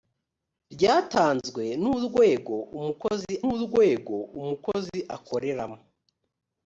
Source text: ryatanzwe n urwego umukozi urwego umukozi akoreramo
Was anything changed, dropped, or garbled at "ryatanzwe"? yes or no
no